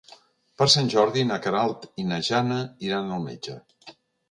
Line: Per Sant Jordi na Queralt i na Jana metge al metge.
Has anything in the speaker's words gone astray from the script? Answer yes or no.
yes